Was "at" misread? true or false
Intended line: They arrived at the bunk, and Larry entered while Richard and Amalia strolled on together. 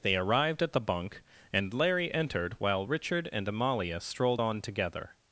false